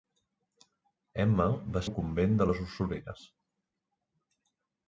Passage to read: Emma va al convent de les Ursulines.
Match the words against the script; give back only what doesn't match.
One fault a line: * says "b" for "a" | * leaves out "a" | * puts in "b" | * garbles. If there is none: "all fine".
all fine